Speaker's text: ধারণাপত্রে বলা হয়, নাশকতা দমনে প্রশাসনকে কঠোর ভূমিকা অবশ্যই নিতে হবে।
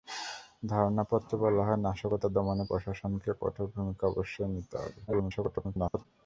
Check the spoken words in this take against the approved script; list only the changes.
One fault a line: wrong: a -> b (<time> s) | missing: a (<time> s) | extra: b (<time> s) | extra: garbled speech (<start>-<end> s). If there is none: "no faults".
extra: garbled speech (5.1-6.1 s)